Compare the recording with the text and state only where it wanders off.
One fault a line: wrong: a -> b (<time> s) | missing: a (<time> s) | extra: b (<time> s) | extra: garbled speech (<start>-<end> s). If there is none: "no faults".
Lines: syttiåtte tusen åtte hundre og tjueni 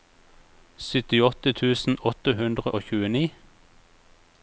no faults